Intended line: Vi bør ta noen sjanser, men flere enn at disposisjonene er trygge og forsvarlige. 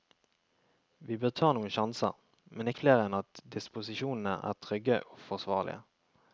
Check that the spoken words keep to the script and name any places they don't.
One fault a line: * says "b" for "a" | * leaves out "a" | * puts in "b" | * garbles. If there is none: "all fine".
all fine